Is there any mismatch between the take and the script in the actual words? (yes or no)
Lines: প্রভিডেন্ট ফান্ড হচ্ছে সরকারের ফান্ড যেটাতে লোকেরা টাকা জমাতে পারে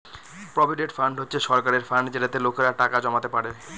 no